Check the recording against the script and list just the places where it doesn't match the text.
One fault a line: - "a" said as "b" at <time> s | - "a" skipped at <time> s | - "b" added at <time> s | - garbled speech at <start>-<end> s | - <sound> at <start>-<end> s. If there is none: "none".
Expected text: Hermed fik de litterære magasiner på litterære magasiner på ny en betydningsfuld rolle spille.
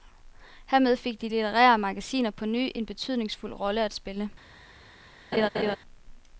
- "litterære magasiner på" skipped at 2.5 s
- "at" added at 3.8 s
- laugh at 5.3-5.8 s